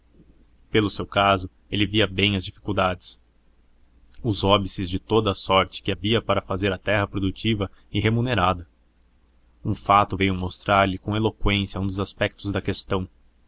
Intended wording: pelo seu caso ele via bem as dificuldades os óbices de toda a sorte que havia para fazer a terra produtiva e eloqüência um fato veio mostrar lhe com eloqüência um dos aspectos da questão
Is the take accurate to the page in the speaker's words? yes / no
no